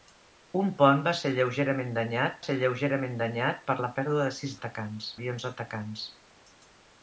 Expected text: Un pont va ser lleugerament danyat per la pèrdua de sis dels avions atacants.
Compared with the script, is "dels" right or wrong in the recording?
wrong